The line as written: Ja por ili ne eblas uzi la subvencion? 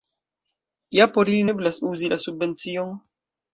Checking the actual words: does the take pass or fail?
fail